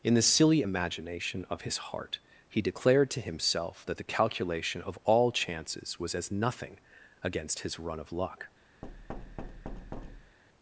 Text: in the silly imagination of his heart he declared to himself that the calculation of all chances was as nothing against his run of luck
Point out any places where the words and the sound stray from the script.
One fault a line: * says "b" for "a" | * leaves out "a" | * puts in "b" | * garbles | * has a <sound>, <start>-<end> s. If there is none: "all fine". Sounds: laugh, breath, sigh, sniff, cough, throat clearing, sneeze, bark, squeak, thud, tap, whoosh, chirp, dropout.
* has a thud, 8.8-10.4 s